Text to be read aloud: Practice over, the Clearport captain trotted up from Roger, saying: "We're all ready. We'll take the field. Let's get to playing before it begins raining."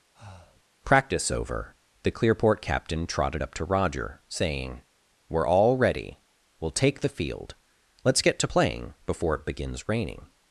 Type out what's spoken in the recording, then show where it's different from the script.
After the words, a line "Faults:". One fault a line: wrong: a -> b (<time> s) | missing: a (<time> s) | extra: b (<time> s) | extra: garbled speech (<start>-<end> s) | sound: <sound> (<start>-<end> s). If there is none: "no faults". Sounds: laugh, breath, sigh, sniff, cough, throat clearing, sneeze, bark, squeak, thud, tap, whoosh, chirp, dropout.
Practice over, the Clearport captain trotted up to Roger, saying: "We're all ready. We'll take the field. Let's get to playing before it begins raining."
Faults:
sound: breath (0.1-0.6 s)
wrong: from -> to (3.6 s)